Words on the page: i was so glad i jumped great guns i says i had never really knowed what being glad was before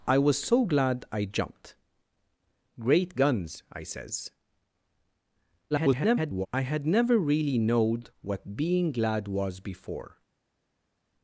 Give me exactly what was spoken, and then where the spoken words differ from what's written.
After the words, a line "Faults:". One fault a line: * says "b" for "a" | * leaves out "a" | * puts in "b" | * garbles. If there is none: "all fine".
i was so glad i jumped great guns i says [garbled] i had never really knowed what being glad was before
Faults:
* garbles